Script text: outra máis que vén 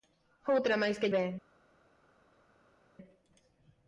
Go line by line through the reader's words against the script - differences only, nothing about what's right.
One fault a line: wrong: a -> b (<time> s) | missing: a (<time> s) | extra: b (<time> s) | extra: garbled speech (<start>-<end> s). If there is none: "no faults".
no faults